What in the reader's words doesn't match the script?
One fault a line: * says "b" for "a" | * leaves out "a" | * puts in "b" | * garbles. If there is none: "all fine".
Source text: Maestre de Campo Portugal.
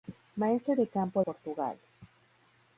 all fine